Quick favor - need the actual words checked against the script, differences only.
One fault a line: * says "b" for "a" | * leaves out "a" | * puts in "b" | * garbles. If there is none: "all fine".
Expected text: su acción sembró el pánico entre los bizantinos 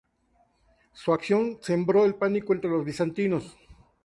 all fine